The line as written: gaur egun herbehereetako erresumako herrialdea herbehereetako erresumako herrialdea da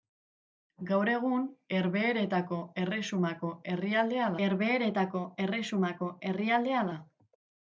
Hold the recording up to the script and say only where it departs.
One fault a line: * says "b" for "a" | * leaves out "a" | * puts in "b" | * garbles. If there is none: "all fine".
all fine